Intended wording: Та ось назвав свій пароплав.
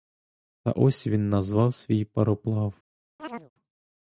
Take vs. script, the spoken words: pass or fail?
fail